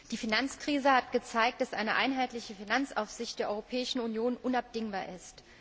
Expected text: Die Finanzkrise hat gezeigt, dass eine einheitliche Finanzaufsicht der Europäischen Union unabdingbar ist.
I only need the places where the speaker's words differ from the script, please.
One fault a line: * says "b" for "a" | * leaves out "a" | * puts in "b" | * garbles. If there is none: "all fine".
all fine